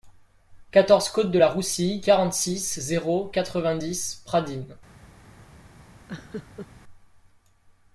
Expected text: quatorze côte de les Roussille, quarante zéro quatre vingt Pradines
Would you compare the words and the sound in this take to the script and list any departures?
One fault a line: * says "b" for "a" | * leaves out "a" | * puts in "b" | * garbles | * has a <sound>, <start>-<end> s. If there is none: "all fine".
* says "la" for "les"
* puts in "six"
* puts in "dix"
* has a laugh, 6.1-6.7 s